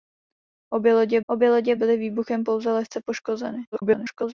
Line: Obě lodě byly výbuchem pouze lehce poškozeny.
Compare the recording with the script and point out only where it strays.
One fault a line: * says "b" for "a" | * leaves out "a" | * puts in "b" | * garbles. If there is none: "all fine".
* puts in "obě lodě"
* garbles